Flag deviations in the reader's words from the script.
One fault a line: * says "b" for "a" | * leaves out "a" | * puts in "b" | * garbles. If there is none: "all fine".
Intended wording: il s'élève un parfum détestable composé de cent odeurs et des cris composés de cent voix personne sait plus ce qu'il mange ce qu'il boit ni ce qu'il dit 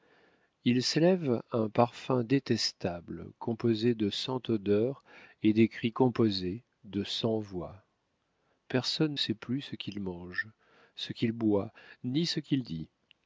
all fine